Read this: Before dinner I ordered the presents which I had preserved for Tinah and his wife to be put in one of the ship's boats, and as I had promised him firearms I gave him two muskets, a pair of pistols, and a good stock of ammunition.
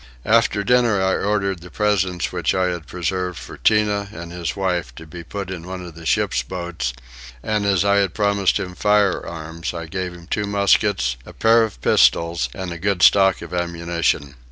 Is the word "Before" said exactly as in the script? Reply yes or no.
no